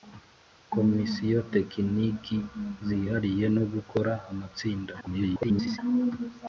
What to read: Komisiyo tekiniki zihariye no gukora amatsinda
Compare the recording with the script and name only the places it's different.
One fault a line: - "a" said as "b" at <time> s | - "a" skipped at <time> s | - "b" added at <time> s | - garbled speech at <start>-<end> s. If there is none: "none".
- garbled speech at 5.0-5.8 s